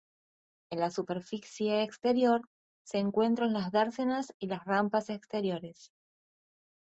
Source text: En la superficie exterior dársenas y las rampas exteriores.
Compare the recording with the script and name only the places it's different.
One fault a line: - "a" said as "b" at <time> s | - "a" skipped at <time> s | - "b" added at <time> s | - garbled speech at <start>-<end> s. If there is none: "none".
- "se encuentran las" added at 2.8 s